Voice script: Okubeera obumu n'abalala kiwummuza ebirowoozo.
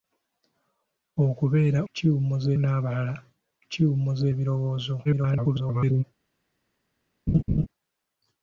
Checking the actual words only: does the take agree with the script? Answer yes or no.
no